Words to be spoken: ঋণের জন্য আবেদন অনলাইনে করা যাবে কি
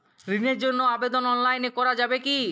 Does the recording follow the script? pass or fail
pass